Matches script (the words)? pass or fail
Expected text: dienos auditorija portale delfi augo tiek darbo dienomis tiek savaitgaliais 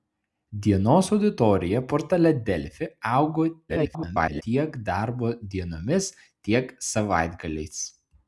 fail